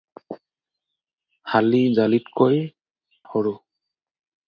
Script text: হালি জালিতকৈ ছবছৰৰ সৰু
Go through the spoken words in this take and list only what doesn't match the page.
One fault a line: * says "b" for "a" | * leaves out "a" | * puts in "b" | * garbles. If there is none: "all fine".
* leaves out "ছবছৰৰ"